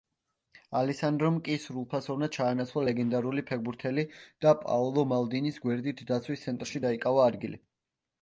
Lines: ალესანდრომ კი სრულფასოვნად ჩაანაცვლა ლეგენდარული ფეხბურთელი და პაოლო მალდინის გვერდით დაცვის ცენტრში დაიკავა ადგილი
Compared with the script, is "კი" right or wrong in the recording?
right